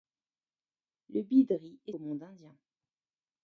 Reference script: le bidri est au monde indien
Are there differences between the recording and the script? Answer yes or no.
no